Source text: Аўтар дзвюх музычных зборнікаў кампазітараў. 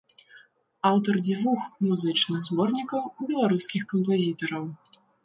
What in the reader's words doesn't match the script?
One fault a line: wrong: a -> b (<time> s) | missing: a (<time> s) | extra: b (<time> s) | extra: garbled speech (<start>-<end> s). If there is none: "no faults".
extra: беларускіх (3.3 s)